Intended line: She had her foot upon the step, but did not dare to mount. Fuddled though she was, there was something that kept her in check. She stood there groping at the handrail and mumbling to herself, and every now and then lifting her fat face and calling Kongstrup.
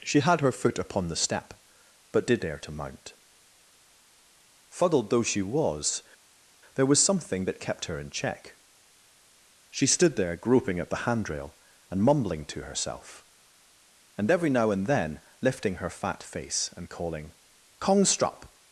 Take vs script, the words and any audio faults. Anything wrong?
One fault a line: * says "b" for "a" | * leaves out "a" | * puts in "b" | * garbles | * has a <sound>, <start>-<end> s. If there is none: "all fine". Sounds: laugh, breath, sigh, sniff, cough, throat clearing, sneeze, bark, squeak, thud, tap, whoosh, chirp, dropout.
* leaves out "not"